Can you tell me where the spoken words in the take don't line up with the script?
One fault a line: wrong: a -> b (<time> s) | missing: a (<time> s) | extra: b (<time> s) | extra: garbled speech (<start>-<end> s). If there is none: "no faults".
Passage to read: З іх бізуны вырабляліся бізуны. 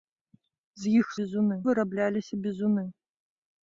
no faults